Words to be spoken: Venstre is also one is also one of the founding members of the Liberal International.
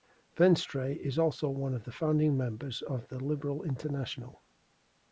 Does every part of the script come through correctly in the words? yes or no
no